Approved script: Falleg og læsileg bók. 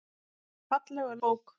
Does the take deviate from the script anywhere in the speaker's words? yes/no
yes